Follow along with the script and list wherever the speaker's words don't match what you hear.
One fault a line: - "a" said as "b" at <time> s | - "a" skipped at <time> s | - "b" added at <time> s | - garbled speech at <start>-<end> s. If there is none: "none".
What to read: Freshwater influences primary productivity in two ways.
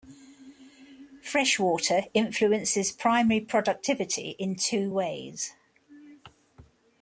none